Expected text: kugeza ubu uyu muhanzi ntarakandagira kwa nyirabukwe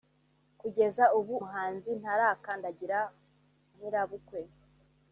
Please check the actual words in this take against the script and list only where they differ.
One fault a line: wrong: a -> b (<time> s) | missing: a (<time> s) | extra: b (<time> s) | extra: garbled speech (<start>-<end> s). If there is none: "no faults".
missing: uyu (1.4 s)
missing: kwa (3.0 s)